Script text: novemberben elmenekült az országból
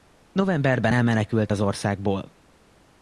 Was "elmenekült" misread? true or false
false